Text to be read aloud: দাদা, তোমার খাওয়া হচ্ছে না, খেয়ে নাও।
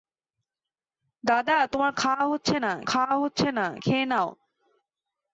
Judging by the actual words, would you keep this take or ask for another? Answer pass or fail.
fail